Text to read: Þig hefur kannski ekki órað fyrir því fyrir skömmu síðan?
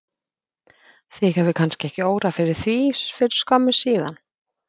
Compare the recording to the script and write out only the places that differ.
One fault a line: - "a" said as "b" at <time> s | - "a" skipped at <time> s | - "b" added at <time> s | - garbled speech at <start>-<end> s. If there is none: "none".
none